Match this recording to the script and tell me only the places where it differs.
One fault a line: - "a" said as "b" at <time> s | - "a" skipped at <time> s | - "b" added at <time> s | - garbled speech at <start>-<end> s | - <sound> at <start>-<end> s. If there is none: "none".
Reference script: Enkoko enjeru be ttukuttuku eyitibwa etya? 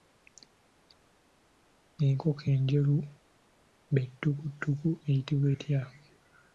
none